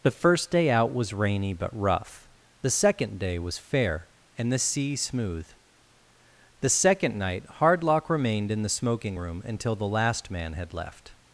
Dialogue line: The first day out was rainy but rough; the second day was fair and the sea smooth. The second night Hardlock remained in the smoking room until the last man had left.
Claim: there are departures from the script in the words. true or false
false